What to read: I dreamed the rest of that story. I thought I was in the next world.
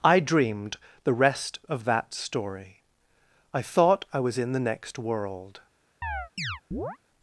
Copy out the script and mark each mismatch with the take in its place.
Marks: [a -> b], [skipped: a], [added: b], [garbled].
I dreamed the rest of that story. I thought I was in the next world.